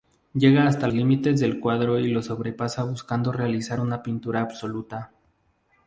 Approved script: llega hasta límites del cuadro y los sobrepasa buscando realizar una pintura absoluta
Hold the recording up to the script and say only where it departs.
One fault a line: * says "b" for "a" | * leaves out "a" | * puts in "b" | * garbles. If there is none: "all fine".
all fine